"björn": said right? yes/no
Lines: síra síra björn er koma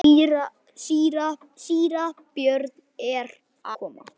yes